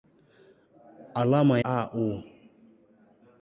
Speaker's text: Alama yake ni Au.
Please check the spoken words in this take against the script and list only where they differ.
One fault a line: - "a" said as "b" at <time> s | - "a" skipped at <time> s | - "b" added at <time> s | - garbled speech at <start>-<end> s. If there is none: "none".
- "yake ni" skipped at 1.6 s